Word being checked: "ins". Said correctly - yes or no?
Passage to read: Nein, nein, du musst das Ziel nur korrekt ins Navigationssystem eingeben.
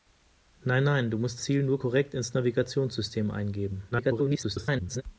yes